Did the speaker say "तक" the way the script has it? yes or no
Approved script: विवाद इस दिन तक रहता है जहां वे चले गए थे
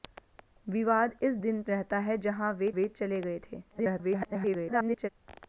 no